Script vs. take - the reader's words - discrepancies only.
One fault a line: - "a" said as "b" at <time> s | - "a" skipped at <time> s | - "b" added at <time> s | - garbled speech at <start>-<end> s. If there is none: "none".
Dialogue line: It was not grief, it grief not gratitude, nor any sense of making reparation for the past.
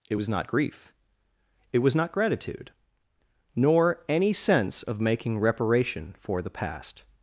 - "grief" said as "was" at 1.8 s